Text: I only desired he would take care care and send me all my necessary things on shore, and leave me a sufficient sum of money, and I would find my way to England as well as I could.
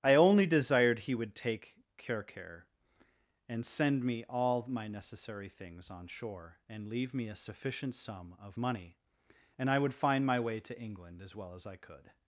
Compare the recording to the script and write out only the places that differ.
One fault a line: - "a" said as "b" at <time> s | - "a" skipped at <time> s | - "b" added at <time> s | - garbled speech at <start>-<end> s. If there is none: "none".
none